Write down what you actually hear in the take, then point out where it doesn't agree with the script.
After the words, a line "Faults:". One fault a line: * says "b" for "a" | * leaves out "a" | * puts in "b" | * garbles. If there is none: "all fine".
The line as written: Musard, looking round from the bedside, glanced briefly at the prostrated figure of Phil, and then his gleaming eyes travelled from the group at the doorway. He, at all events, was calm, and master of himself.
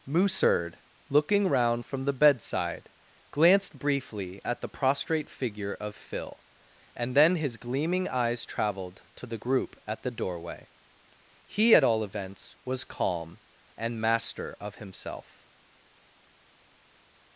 Musard, looking round from the bedside, glanced briefly at the prostrate figure of Phil, and then his gleaming eyes travelled to the group at the doorway. He, at all events, was calm, and master of himself.
Faults:
* says "prostrate" for "prostrated"
* says "to" for "from"